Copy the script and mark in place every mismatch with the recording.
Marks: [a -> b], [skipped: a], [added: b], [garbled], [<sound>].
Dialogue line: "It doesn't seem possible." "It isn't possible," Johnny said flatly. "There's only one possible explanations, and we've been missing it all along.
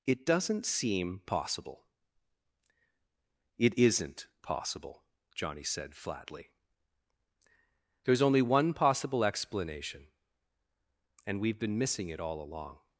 "It doesn't seem possible." "It isn't possible," Johnny said flatly. "There's only one possible [explanations, -> explanation] and we've been missing it all along.